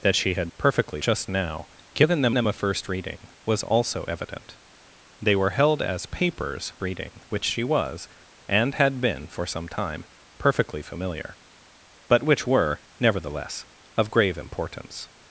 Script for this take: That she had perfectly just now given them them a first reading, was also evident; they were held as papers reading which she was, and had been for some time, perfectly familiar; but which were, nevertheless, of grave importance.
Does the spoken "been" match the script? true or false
true